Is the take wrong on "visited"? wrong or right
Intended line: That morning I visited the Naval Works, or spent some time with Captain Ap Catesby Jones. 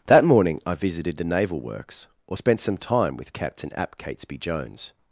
right